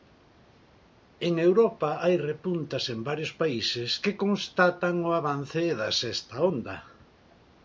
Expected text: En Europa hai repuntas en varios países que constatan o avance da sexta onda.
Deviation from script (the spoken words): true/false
false